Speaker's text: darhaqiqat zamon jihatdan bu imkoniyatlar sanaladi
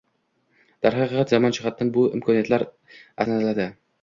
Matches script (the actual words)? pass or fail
pass